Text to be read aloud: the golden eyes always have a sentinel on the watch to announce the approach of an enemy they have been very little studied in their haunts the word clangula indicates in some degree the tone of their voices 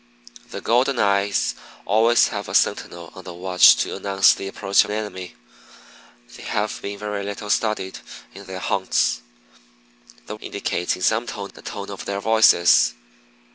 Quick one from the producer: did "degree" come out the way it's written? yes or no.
no